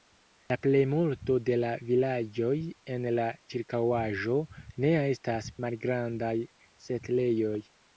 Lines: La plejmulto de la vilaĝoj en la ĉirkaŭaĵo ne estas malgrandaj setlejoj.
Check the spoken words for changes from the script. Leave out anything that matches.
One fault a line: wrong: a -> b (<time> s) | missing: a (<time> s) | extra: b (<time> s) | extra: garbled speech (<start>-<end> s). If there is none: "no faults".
no faults